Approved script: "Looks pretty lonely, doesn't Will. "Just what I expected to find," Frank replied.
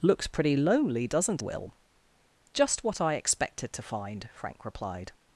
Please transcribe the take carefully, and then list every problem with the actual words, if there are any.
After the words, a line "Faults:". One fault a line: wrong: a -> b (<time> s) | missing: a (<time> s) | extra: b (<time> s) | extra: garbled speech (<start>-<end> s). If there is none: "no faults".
"Looks pretty lonely, doesn't Will. "Just what I expected to find," Frank replied.
Faults:
no faults